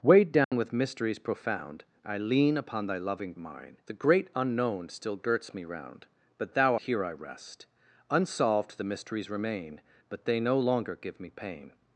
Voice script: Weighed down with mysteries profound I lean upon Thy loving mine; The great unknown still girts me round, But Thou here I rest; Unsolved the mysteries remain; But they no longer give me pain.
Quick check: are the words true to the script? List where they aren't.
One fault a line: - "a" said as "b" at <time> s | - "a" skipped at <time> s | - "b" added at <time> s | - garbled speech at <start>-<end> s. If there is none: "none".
none